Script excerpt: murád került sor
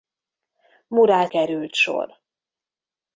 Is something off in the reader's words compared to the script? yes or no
no